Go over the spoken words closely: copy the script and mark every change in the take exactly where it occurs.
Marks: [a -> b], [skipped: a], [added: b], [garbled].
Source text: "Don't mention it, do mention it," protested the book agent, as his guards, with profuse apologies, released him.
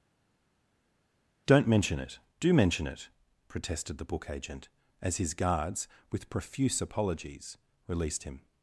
"Don't mention it, do mention it," protested the book agent, as his guards, with profuse apologies, released him.